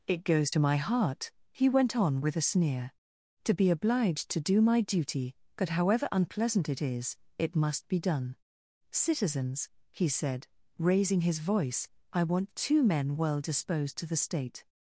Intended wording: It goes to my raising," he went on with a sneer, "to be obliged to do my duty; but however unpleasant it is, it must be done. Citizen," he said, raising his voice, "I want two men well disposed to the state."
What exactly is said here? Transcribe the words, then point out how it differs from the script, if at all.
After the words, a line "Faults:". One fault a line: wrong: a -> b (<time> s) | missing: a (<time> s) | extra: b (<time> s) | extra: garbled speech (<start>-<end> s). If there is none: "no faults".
It goes to my heart," he went on with a sneer, "to be obliged to do my duty; but however unpleasant it is, it must be done. Citizens," he said, raising his voice, "I want two men well disposed to the state."
Faults:
wrong: raising -> heart (0.8 s)
wrong: Citizen -> Citizens (8.9 s)